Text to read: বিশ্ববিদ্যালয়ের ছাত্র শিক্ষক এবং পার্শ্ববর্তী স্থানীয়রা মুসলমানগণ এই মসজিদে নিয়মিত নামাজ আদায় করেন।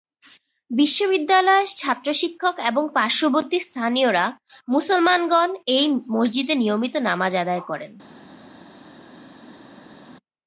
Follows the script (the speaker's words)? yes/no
yes